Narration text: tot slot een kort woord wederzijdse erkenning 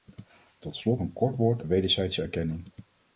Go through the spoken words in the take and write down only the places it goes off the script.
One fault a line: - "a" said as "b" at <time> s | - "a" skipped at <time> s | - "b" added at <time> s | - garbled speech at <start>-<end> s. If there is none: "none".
none